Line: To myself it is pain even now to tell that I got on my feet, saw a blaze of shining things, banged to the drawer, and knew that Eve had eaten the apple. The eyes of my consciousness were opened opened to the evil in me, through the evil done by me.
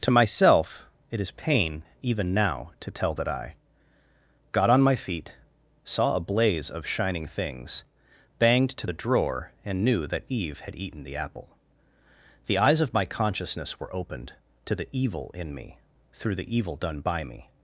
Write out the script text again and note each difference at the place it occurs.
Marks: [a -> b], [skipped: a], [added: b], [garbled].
To myself it is pain even now to tell that I got on my feet, saw a blaze of shining things, banged to the drawer, and knew that Eve had eaten the apple. The eyes of my consciousness were opened [skipped: opened] to the evil in me, through the evil done by me.